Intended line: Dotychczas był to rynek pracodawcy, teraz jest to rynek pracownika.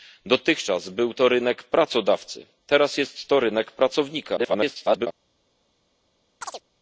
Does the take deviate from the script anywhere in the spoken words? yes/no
yes